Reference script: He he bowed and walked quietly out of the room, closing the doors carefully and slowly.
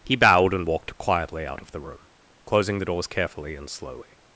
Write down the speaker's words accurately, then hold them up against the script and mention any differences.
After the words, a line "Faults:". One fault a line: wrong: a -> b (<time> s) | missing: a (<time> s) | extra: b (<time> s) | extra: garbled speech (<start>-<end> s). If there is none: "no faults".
He bowed and walked quietly out of the room, closing the doors carefully and slowly.
Faults:
missing: he (0.1 s)